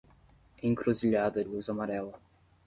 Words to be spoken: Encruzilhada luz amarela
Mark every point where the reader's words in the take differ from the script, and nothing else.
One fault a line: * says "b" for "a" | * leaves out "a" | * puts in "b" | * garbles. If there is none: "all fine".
all fine